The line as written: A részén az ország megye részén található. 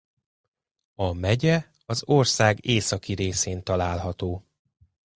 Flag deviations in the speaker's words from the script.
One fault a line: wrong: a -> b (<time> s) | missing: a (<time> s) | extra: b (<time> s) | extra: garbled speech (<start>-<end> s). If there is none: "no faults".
wrong: részén -> megye (1.1 s)
wrong: megye -> északi (2.7 s)